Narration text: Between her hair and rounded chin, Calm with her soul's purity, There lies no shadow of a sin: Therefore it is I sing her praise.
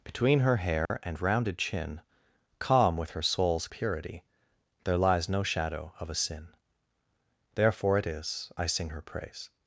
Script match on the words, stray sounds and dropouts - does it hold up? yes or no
no